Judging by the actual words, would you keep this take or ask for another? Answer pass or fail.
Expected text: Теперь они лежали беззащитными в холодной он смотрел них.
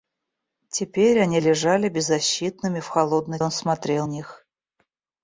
pass